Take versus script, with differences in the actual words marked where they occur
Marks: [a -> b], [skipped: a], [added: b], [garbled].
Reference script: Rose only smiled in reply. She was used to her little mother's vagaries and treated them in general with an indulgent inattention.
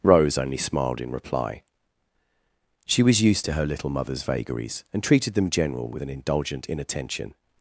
Rose only smiled in reply. She was used to her little mother's vagaries and treated them [skipped: in] general with an indulgent inattention.